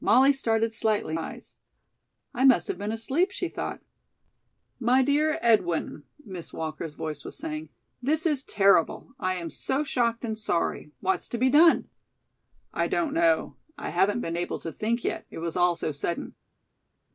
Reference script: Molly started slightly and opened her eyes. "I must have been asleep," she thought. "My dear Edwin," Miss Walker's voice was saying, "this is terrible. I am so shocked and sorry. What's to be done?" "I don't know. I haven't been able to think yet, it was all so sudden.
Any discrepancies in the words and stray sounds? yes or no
yes